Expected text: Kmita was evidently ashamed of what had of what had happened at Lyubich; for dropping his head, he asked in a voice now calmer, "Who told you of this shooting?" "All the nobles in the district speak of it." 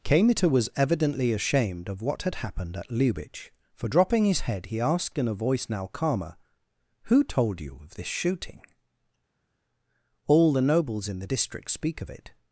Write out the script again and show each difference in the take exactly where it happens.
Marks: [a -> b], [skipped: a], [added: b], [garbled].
Kmita was evidently ashamed of what had [skipped: of what had] happened at Lyubich; for dropping his head, he asked in a voice now calmer, "Who told you of this shooting?" "All the nobles in the district speak of it."